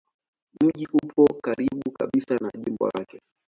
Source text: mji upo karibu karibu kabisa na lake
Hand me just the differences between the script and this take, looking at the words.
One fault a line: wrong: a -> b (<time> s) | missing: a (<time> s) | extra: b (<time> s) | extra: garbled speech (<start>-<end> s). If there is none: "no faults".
missing: karibu (1.9 s)
extra: jimbo (2.7 s)